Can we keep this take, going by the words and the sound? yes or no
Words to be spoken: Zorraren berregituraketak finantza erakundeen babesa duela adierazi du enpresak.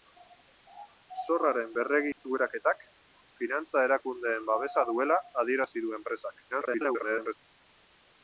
no